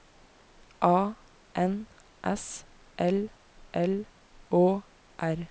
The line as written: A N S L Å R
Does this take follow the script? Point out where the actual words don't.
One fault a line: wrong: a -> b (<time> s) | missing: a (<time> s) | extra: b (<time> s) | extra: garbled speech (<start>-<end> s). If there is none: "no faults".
extra: L (3.7 s)